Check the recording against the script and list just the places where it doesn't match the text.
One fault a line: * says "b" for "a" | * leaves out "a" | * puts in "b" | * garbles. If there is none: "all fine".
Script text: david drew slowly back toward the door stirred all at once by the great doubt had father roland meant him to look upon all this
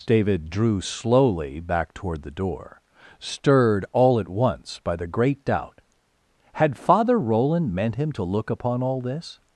all fine